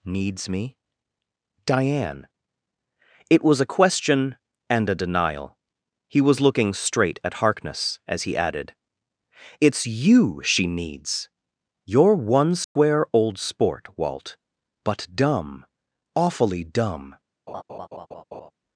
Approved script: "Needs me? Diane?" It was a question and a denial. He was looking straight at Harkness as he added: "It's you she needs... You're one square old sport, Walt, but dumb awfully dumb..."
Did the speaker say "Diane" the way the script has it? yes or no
yes